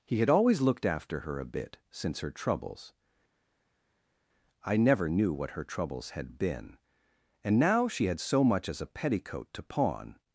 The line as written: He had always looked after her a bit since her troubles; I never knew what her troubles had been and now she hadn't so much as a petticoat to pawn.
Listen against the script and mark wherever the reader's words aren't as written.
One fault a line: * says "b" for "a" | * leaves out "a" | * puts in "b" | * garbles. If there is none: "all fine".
* says "had" for "hadn't"